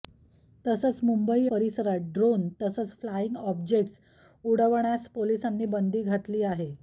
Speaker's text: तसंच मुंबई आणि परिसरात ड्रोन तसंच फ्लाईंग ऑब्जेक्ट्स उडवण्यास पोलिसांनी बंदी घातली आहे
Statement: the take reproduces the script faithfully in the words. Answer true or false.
false